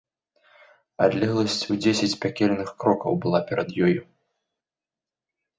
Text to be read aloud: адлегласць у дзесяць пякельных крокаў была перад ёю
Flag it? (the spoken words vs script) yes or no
no